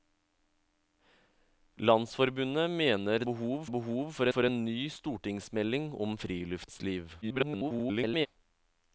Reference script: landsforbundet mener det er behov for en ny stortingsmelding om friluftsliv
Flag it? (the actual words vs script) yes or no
yes